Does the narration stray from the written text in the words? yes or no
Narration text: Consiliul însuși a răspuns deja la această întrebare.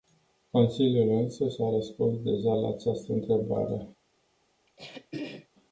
no